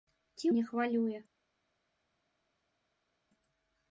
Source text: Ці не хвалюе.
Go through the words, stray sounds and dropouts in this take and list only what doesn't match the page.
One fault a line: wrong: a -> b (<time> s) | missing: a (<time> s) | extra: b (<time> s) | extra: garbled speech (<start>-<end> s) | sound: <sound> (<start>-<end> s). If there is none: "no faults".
no faults